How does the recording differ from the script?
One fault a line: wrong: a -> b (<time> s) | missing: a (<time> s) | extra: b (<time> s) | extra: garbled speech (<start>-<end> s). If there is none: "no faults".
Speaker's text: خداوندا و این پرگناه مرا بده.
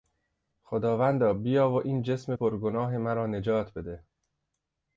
extra: بیا (1.3 s)
extra: جسم (2.0 s)
extra: نجات (3.3 s)